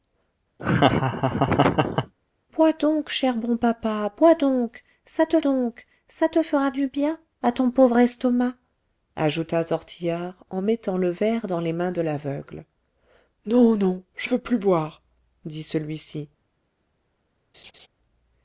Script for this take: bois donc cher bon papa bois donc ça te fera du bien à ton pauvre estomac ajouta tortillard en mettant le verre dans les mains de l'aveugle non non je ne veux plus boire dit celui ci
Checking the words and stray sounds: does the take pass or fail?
fail